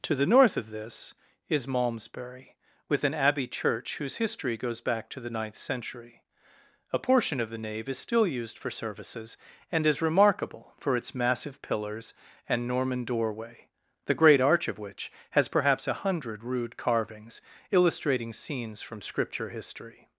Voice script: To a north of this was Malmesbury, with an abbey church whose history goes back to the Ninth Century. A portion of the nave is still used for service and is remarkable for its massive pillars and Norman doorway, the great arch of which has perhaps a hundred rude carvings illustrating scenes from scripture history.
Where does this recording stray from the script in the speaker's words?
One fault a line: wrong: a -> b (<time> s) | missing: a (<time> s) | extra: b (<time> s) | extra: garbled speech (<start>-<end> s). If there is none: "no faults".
wrong: a -> the (0.1 s)
wrong: was -> is (1.5 s)
wrong: service -> services (8.7 s)